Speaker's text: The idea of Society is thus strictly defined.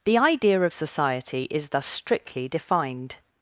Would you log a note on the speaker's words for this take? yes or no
no